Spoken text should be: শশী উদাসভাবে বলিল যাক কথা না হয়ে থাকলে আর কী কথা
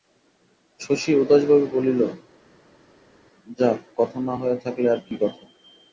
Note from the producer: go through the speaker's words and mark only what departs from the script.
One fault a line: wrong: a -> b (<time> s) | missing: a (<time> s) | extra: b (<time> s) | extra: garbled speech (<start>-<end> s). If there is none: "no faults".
no faults